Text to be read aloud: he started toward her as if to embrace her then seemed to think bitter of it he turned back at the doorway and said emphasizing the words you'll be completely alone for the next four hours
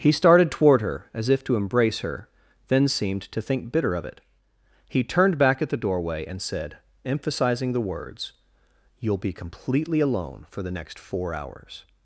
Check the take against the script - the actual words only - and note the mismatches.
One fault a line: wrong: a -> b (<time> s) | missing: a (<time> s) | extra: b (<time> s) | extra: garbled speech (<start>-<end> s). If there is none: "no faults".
no faults